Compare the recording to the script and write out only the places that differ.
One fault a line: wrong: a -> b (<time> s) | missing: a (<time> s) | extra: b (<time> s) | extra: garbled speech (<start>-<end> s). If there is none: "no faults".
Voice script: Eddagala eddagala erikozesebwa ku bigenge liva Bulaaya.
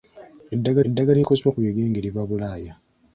no faults